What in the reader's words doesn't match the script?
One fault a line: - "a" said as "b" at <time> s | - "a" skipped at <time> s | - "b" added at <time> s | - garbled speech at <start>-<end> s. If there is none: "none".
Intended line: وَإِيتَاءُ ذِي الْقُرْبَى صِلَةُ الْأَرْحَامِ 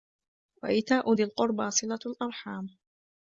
none